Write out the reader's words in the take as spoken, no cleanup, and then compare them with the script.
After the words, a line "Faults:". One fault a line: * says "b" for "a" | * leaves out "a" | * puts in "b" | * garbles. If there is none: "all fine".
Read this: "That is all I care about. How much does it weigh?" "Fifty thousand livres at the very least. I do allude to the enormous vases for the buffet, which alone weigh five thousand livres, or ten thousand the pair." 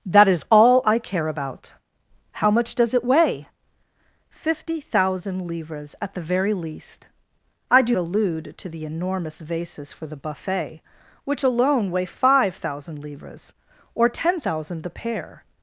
"That is all I care about. How much does it weigh?" "Fifty thousand livres at the very least. I do allude to the enormous vases for the buffet, which alone weigh five thousand livres, or ten thousand the pair."
Faults:
all fine